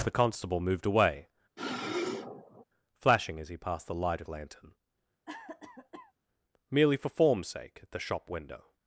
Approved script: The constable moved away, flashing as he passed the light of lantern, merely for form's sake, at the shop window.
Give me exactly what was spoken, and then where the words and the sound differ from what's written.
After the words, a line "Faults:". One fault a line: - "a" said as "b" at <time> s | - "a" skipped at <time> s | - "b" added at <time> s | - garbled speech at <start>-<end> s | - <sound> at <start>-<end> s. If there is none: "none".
The constable moved away, flashing as he passed the light of lantern, merely for form's sake, at the shop window.
Faults:
- sniff at 1.6-2.6 s
- cough at 5.3-6.1 s